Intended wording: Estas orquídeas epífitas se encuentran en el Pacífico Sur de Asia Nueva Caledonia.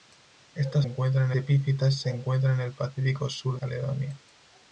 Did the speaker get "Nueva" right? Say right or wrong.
wrong